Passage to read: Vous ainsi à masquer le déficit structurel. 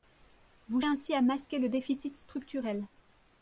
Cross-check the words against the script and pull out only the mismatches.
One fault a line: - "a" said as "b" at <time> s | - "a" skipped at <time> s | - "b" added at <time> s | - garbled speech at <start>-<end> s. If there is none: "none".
none